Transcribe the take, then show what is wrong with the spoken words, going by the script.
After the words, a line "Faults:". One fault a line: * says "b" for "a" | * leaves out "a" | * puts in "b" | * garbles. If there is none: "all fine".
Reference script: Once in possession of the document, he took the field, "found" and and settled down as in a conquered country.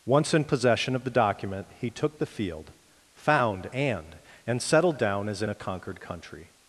Once in possession of the document, he took the field, "found" and and settled down as in a conquered country.
Faults:
all fine